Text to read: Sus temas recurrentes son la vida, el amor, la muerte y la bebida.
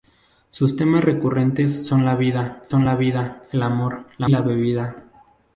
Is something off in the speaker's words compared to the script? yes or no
yes